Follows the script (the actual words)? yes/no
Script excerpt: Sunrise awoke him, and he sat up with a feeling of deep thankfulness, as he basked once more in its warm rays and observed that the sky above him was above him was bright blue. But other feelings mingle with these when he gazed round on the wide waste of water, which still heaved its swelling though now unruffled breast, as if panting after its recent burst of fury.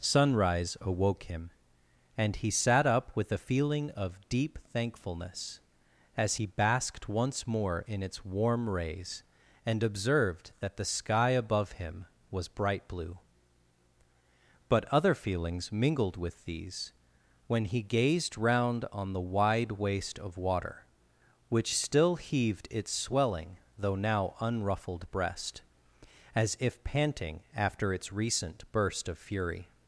no